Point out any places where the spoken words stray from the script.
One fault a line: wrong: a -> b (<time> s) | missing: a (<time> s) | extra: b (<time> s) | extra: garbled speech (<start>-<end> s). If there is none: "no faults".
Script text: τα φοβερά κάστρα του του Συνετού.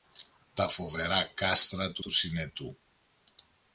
no faults